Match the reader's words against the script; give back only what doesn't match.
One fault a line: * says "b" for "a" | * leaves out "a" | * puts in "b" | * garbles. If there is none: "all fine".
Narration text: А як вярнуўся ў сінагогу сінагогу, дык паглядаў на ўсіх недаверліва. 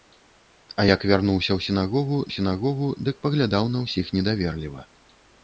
all fine